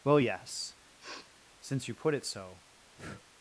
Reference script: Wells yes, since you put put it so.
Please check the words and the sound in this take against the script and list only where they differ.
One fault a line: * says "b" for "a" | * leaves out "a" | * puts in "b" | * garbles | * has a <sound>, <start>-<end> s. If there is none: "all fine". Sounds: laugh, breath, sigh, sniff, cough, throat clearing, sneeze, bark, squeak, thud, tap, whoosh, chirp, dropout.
* says "Well" for "Wells"
* has a sniff, 1.0-1.3 s
* leaves out "put"
* has a breath, 3.0-3.2 s